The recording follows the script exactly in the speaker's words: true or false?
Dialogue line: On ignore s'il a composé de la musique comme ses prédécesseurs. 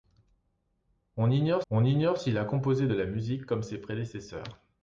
false